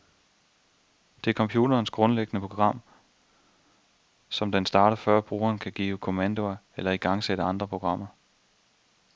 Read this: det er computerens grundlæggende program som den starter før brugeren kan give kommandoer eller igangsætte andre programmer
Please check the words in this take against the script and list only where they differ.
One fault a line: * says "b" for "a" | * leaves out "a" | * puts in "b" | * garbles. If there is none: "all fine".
all fine